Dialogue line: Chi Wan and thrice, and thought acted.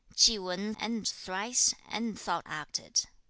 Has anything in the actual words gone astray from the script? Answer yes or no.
no